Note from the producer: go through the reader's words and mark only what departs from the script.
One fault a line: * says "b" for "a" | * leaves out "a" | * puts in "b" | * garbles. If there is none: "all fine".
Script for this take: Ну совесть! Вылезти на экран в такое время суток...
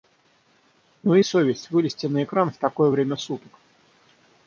all fine